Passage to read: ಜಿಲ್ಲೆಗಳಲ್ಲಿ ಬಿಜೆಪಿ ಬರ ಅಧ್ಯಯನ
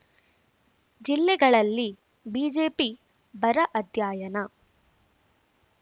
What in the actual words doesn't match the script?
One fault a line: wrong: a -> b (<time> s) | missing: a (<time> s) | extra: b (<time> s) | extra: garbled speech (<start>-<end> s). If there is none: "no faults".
no faults